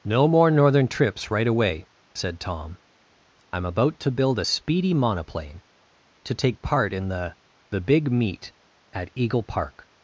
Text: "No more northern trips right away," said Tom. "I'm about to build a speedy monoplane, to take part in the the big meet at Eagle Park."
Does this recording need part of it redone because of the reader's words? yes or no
no